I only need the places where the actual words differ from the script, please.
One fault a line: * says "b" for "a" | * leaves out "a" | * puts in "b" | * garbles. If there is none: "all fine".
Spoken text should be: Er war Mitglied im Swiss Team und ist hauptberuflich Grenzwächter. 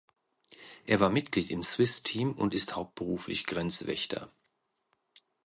all fine